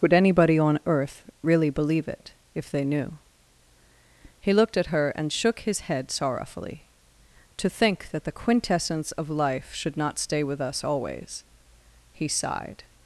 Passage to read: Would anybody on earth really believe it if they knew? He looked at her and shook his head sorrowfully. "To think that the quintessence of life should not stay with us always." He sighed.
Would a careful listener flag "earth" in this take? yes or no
no